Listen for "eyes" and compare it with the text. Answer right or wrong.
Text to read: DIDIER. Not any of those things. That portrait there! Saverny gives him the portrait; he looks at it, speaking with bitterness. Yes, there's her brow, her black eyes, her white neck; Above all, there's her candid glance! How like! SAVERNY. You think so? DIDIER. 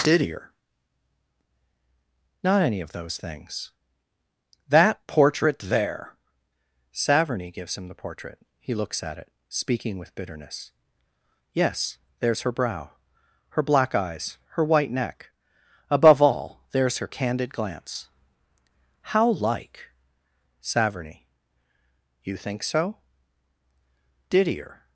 right